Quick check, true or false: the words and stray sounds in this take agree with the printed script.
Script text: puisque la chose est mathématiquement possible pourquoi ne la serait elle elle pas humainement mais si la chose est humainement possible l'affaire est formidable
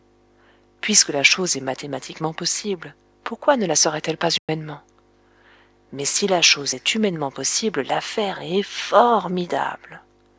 false